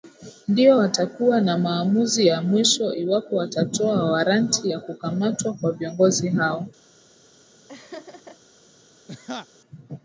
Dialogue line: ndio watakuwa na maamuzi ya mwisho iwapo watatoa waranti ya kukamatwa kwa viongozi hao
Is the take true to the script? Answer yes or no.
yes